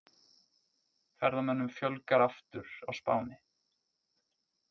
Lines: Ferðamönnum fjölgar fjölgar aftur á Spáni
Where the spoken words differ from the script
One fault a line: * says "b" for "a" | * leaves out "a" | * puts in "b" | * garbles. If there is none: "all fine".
* leaves out "fjölgar"